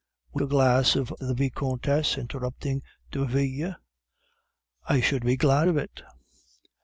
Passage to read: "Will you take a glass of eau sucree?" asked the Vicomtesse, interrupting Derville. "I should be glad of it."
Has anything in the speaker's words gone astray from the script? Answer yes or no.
yes